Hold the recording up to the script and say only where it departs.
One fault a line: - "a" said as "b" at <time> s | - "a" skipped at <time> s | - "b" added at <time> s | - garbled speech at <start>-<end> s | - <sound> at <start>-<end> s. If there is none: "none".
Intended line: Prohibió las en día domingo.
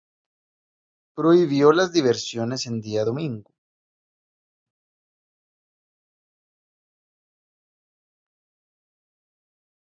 - "diversiones" added at 1.9 s